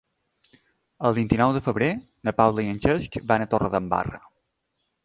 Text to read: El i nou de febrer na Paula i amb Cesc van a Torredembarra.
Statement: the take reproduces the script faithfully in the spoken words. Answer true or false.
false